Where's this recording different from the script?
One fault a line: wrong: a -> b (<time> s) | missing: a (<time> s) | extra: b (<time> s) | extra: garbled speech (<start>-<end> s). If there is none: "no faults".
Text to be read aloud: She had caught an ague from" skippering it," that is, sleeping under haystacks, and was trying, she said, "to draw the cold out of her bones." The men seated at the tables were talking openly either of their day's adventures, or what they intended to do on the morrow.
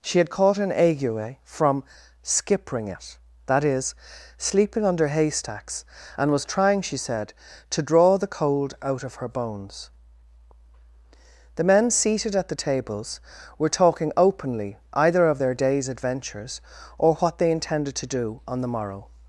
no faults